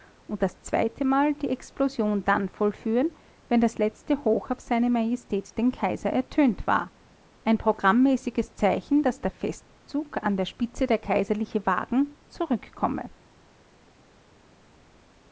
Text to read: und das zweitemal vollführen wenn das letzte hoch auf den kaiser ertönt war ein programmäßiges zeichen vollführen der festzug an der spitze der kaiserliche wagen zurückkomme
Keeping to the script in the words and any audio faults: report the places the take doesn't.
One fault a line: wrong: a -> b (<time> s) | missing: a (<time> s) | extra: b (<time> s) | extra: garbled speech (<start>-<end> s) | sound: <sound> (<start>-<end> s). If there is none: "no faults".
extra: die explosion dann (1.4 s)
extra: se majestät (4.6 s)
wrong: vollführen -> daß (9.0 s)